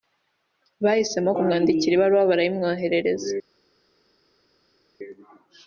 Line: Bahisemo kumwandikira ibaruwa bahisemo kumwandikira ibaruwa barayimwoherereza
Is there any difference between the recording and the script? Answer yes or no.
yes